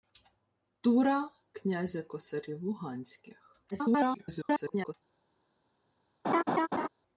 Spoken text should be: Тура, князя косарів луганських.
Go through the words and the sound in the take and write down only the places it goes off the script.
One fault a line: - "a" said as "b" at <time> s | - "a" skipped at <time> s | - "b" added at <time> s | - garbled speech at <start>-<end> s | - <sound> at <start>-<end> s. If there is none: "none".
- garbled speech at 3.7-4.9 s
- laugh at 6.2-6.9 s